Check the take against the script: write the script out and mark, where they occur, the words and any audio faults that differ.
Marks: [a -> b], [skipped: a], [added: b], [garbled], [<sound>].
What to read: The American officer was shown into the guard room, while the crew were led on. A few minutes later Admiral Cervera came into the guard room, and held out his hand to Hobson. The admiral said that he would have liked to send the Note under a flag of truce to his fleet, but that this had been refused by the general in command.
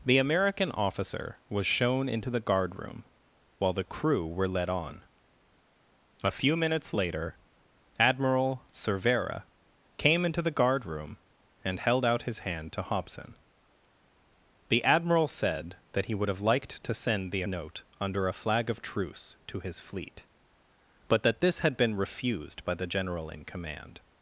The American officer was shown into the guard room, while the crew were led on. A few minutes later Admiral Cervera came into the guard room, and held out his hand to Hobson. The admiral said that he would have liked to send the Note under a flag of truce to his fleet, but that this had been refused by the general in command.